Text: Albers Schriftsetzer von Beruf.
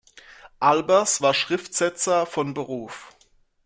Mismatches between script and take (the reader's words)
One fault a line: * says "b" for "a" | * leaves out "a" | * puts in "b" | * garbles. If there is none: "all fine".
* puts in "war"